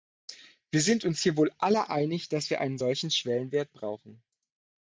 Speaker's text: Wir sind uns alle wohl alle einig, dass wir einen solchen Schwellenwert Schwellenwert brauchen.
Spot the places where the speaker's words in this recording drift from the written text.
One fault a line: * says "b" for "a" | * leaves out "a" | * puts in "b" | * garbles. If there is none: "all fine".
* says "hier" for "alle"
* leaves out "Schwellenwert"